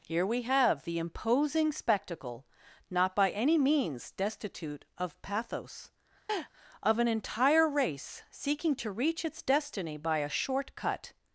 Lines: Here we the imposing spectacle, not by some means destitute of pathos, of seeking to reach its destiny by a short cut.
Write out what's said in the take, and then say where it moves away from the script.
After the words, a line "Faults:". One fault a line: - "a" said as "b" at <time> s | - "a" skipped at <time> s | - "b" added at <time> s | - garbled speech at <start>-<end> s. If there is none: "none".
Here we have the imposing spectacle, not by any means destitute of pathos, of an entire race seeking to reach its destiny by a short cut.
Faults:
- "have" added at 0.4 s
- "some" said as "any" at 3.3 s
- "an entire race" added at 7.0 s